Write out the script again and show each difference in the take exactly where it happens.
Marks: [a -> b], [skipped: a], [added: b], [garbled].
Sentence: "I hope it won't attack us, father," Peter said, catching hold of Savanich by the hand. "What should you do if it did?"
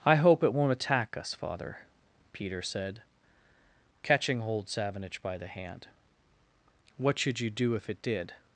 "I hope it won't attack us, father," Peter said, catching hold [skipped: of] Savanich by the hand. "What should you do if it did?"